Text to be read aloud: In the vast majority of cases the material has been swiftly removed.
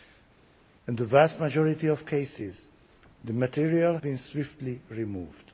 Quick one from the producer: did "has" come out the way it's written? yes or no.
no